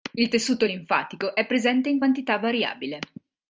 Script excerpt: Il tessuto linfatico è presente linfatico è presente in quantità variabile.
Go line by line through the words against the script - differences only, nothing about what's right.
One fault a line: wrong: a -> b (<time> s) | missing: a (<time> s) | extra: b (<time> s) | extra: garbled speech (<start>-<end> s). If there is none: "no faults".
missing: linfatico è presente (1.9 s)